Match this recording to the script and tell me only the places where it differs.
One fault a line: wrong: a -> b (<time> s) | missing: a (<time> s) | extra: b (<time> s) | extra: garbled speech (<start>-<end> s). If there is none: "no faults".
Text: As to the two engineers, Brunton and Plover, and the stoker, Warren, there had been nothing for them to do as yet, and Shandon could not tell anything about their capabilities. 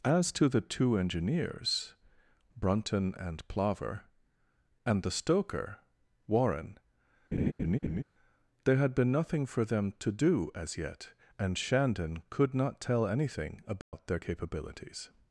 no faults